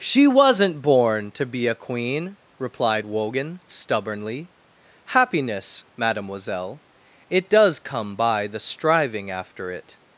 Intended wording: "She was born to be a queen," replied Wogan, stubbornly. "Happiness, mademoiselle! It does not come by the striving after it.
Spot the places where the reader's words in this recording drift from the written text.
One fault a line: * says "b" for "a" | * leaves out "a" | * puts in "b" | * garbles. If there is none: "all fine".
* says "wasn't" for "was"
* leaves out "not"